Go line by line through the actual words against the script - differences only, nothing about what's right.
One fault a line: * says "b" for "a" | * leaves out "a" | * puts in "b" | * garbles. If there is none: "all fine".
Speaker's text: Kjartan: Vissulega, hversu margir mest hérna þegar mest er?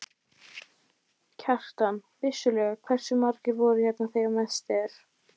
* says "voru" for "mest"